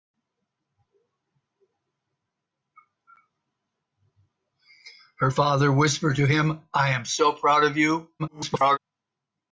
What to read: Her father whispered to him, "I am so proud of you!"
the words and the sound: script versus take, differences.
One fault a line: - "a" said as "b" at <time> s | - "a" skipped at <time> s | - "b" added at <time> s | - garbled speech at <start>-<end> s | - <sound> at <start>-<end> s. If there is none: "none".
- garbled speech at 8.2-8.8 s